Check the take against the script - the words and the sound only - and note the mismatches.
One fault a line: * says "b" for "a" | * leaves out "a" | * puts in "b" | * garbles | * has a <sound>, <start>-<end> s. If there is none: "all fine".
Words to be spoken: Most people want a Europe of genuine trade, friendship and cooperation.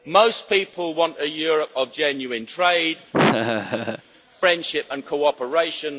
* has a laugh, 3.1-4.0 s